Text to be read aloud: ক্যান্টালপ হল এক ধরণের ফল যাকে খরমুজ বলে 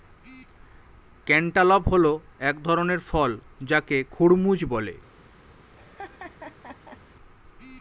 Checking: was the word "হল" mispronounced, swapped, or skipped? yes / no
no